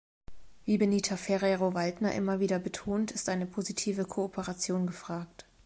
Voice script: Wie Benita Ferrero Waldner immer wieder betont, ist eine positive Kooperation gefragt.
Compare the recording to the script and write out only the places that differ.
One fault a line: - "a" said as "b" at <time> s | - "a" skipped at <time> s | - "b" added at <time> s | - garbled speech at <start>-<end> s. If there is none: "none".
none